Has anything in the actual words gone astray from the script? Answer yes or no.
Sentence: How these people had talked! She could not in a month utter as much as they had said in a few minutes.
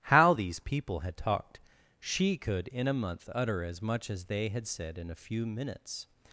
yes